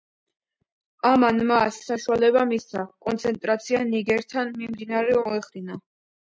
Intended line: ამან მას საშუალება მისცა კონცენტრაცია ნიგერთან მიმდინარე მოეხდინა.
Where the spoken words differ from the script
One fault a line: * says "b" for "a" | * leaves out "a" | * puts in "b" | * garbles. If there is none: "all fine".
all fine